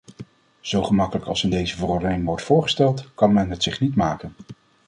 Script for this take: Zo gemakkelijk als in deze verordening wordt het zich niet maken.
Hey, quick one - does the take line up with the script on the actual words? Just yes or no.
no